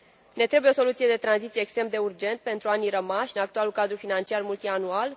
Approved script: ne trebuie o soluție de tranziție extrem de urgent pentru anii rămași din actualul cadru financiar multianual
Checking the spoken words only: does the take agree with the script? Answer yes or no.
no